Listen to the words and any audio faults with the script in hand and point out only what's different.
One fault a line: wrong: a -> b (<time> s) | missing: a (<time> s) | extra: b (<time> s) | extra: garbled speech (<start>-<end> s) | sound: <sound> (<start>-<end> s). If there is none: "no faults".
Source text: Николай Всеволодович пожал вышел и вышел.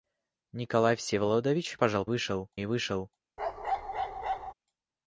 sound: bark (3.4-4.5 s)